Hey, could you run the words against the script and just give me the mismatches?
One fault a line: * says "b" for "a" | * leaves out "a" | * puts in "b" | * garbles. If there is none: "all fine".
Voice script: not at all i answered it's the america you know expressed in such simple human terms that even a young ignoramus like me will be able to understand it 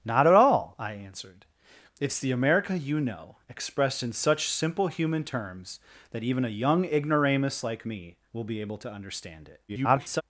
* garbles